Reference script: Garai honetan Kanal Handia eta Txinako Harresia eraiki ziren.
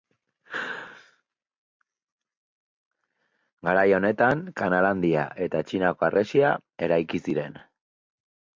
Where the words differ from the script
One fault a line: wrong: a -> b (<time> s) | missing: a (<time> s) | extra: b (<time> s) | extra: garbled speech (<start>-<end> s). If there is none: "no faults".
no faults